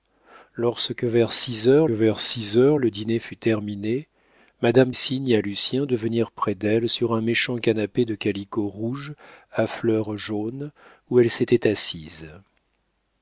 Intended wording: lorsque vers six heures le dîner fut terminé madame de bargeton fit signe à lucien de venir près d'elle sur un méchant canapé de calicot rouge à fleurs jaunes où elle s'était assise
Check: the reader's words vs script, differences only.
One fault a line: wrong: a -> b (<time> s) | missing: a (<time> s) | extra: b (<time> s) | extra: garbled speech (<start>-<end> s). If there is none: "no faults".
extra: vers six heures (1.9 s)
missing: de bargeton fit (4.9 s)